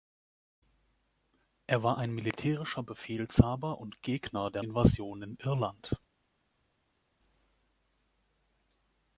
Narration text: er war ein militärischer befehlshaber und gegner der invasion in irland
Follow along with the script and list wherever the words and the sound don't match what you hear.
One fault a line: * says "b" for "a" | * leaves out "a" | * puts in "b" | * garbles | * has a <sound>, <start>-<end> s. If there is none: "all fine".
all fine